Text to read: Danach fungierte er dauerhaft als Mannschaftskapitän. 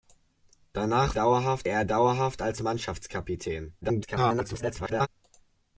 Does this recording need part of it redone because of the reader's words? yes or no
yes